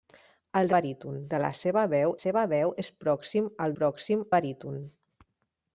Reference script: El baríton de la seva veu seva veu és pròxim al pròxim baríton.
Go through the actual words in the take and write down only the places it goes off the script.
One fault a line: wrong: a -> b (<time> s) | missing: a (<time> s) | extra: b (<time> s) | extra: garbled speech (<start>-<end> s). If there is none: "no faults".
no faults